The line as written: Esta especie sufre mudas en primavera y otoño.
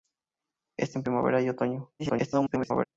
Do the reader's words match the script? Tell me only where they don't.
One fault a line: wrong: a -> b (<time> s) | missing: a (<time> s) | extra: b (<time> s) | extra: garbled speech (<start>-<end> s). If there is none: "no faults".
missing: especie sufre mudas (1.0 s)
extra: garbled speech (2.0-2.8 s)